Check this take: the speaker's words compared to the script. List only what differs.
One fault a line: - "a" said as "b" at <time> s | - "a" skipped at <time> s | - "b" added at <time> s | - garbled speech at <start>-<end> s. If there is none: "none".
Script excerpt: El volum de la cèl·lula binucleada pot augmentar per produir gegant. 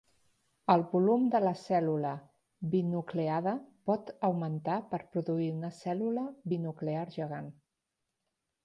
- "una cèl·lula binuclear" added at 5.6 s